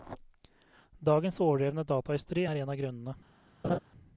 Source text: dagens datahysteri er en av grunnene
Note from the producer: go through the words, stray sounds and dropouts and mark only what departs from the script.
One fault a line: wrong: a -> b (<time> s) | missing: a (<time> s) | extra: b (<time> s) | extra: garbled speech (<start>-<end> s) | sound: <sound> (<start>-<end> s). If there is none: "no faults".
extra: overdrevne (1.4 s)
sound: laugh (3.6-3.8 s)